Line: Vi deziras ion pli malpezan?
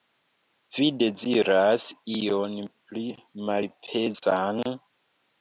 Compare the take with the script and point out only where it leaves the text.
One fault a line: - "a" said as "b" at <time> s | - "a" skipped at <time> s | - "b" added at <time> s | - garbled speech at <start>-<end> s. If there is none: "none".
none